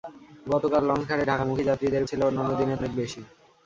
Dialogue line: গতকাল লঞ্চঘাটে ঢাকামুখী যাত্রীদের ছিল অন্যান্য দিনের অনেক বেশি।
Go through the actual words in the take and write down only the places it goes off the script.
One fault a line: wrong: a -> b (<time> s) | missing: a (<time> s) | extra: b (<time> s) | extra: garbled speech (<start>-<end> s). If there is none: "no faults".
no faults